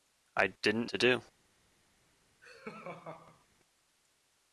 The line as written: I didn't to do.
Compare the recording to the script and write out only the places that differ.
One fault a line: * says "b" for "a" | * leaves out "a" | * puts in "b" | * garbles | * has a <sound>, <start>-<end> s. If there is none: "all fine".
* has a laugh, 2.4-3.5 s